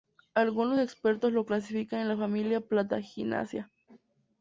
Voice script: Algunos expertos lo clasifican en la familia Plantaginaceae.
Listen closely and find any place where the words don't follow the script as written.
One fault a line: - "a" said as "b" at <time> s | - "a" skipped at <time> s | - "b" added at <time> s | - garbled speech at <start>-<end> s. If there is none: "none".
none